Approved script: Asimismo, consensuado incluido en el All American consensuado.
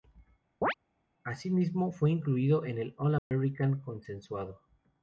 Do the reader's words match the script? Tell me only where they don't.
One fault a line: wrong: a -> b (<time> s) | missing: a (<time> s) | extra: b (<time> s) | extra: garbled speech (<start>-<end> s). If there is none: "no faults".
wrong: consensuado -> fue (1.9 s)